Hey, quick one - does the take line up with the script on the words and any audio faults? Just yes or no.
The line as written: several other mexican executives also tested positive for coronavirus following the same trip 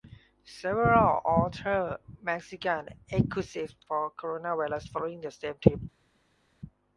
no